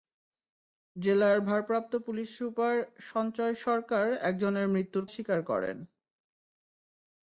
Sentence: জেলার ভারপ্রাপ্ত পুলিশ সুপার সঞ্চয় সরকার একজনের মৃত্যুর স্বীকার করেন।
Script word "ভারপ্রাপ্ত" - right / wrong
right